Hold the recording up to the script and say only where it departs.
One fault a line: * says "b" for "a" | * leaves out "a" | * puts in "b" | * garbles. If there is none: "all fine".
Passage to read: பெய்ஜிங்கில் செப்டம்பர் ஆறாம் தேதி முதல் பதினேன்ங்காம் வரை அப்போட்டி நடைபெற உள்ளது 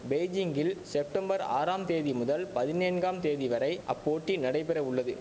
* puts in "தேதி"